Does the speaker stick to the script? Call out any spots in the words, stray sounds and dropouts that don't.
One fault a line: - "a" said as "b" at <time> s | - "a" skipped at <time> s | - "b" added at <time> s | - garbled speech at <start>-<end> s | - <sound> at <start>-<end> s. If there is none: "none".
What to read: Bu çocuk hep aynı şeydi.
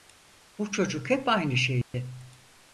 - dropout at 1.8-1.9 s